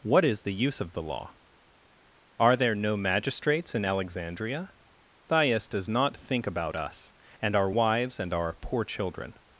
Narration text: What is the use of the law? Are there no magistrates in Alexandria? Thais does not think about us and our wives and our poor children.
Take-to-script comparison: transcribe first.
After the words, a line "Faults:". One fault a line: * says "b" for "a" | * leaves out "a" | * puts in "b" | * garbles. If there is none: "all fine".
What is the use of the law? Are there no magistrates in Alexandria? Thais does not think about us and our wives and our poor children.
Faults:
all fine